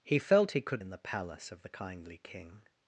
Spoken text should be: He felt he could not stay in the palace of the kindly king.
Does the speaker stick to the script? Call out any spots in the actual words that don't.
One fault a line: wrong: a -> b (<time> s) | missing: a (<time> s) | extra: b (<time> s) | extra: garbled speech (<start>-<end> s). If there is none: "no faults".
missing: not stay (0.8 s)